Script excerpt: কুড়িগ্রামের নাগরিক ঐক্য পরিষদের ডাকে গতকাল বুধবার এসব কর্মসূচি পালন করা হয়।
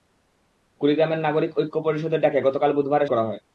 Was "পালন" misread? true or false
true